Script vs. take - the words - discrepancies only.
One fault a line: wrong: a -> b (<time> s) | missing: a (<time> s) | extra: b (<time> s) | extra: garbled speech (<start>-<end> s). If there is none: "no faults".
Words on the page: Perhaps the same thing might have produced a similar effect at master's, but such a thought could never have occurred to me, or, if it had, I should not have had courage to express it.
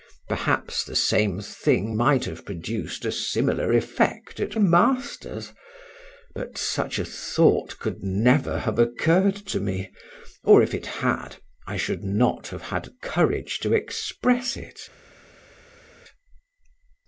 no faults